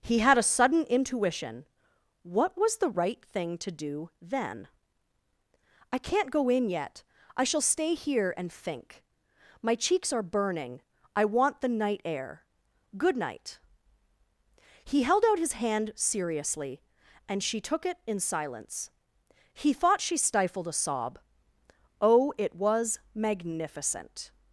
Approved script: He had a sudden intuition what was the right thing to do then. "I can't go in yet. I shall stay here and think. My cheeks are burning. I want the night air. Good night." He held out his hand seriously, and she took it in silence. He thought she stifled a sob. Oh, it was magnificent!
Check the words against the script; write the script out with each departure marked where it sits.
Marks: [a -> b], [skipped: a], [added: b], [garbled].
He had a sudden intuition what was the right thing to do then. "I can't go in yet. I shall stay here and think. My cheeks are burning. I want the night air. Good night." He held out his hand seriously, and she took it in silence. He thought she stifled a sob. Oh, it was magnificent!